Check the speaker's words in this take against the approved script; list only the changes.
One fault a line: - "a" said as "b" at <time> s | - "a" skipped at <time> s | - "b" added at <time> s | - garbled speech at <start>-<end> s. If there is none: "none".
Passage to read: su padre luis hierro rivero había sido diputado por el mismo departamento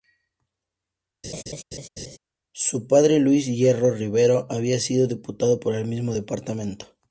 none